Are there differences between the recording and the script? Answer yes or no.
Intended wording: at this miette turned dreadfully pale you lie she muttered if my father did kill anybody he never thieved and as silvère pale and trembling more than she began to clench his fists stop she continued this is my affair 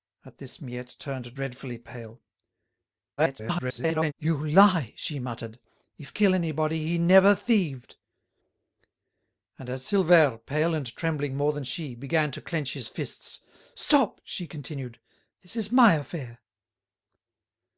yes